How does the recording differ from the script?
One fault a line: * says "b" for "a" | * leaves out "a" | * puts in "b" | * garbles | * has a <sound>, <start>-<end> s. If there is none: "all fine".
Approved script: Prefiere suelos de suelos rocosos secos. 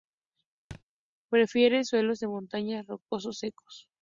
* has a thud, 0.7-0.8 s
* says "montaña" for "suelos"